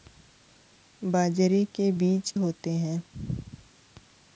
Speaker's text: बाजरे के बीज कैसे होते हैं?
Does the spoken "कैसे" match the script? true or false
false